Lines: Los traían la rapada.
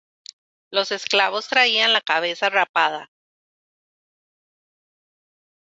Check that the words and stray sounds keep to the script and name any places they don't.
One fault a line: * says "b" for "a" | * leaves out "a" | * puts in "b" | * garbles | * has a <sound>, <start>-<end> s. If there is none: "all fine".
* puts in "esclavos"
* puts in "cabeza"